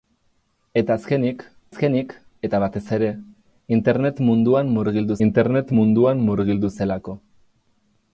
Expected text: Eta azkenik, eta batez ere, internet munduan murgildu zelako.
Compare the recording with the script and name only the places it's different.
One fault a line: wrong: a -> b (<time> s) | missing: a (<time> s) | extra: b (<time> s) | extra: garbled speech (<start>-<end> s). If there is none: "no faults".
extra: azkenik (1.7 s)
extra: internet munduan murgildu (5.3 s)